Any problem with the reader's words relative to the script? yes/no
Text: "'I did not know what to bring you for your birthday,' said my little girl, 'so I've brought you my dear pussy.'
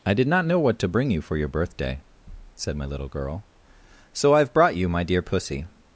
no